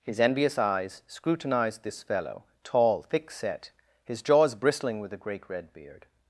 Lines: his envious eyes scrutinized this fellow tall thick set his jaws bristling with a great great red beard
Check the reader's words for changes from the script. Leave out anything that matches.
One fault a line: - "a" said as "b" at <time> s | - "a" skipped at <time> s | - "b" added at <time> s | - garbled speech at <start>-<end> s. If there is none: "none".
- "great" skipped at 5.5 s